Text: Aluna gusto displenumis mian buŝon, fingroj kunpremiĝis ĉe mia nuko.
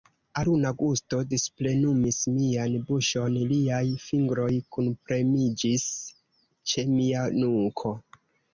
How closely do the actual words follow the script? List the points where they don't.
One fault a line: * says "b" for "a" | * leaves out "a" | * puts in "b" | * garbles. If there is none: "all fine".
* puts in "liaj"